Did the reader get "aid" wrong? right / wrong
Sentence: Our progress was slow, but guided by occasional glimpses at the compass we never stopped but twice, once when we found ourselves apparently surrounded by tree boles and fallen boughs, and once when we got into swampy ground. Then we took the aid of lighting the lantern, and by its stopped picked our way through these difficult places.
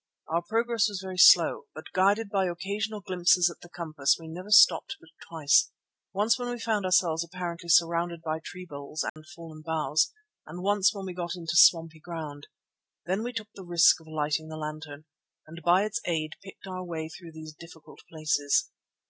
wrong